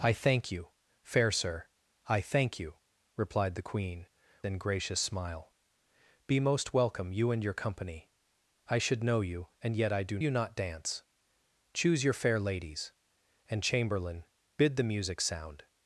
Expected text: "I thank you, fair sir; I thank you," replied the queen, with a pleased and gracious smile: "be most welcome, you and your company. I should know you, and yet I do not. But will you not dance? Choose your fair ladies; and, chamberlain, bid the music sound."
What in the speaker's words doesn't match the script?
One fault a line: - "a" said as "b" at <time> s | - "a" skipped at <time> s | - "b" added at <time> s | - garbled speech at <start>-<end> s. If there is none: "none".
- "with a pleased" skipped at 4.1 s
- "not But will" skipped at 10.2 s